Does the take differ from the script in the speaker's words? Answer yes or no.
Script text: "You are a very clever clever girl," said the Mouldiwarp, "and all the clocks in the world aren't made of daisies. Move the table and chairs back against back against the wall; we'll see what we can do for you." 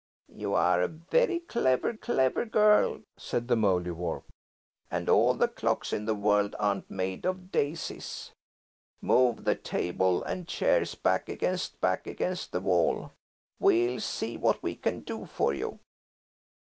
no